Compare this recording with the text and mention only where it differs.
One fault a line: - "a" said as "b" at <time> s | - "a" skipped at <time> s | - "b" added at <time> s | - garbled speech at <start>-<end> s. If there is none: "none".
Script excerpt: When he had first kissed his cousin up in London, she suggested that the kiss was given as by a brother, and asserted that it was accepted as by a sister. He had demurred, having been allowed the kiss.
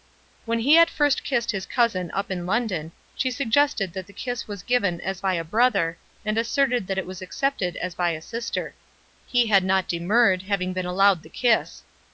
- "not" added at 9.6 s